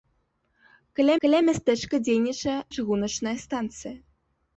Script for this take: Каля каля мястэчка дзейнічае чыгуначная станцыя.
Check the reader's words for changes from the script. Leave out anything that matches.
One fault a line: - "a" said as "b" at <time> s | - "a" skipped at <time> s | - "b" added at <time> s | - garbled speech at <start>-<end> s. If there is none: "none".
none